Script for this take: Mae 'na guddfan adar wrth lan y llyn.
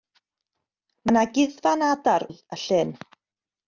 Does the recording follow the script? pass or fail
fail